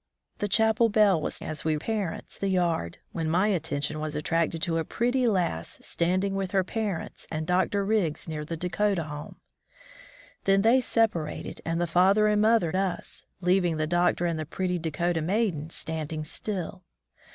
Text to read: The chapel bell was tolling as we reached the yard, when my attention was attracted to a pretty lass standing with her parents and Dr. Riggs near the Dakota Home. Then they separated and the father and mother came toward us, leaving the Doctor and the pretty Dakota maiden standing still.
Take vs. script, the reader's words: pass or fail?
fail